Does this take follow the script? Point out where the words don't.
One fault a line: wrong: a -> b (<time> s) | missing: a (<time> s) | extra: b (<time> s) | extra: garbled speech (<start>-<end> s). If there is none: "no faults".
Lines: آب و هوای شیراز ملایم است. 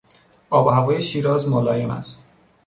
no faults